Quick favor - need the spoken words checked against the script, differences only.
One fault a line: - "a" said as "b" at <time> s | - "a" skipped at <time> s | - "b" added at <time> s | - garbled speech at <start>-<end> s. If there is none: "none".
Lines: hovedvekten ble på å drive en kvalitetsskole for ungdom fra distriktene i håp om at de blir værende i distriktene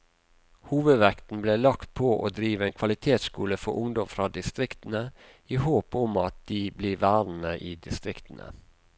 - "lagt" added at 1.6 s